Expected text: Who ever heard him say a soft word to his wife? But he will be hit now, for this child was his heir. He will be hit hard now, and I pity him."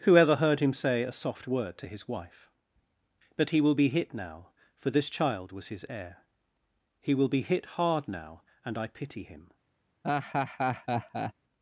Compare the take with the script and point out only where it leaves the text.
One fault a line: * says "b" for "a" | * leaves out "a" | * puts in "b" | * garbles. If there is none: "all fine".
all fine